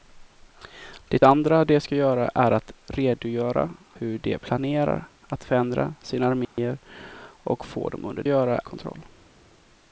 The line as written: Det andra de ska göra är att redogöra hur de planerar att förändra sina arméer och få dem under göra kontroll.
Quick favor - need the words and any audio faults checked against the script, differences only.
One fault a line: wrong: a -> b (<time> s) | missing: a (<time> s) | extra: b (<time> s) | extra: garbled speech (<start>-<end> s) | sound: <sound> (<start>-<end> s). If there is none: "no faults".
sound: dropout (6.4-6.6 s)